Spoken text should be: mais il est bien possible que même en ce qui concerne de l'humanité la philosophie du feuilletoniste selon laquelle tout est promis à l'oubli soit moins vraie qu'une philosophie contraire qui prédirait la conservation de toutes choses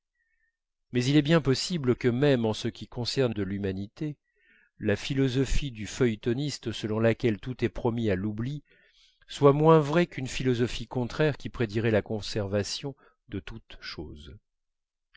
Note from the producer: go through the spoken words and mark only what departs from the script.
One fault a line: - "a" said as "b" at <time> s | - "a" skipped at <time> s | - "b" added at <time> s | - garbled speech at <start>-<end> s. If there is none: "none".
none